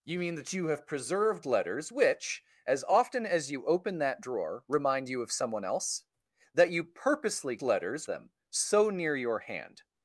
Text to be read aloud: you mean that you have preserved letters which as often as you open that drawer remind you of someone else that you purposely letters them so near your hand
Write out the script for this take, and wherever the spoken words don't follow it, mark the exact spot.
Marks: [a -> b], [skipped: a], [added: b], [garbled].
you mean that you have preserved letters which as often as you open that drawer remind you of someone else that you purposely letters them so near your hand